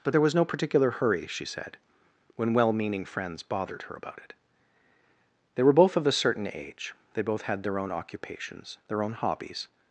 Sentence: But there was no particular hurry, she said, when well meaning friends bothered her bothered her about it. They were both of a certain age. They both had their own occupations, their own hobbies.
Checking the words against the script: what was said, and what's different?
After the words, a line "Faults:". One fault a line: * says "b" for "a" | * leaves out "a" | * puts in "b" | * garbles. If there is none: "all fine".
But there was no particular hurry, she said, when well meaning friends bothered her about it. They were both of a certain age. They both had their own occupations, their own hobbies.
Faults:
* leaves out "bothered her"